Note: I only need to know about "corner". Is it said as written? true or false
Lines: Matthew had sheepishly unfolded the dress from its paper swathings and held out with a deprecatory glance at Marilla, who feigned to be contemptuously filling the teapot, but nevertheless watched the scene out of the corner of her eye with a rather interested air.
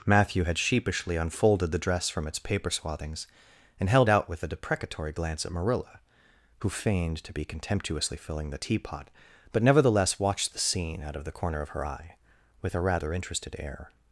true